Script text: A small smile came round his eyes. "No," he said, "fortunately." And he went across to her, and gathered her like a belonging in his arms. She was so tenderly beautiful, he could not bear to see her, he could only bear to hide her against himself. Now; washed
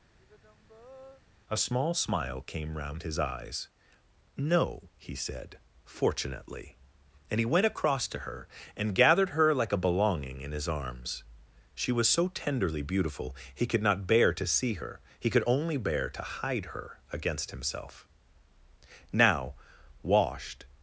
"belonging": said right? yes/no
yes